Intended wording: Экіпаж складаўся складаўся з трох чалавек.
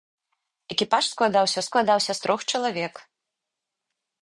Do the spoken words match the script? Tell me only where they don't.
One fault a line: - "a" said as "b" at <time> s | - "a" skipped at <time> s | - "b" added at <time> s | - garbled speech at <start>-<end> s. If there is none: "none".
none